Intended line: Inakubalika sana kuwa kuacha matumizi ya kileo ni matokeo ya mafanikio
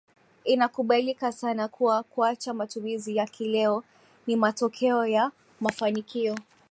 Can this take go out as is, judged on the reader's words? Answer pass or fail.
pass